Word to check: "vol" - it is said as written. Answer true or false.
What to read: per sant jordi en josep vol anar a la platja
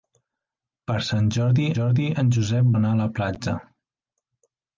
false